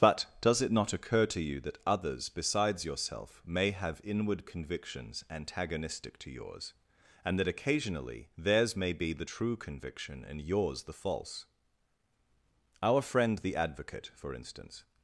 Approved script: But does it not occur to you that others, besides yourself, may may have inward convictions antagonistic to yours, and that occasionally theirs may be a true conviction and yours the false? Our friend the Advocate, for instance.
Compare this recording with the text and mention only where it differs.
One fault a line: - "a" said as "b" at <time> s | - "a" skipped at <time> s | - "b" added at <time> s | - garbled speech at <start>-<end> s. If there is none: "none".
- "may" skipped at 3.7 s
- "a" said as "the" at 9.1 s